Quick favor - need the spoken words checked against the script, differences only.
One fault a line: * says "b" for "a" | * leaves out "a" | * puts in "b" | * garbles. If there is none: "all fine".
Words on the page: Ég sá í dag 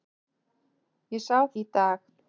all fine